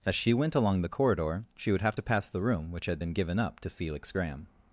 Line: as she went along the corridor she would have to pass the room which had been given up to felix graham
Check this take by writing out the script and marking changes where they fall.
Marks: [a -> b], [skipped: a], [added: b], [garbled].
as she went along the corridor she would have to pass the room which had been given up to felix graham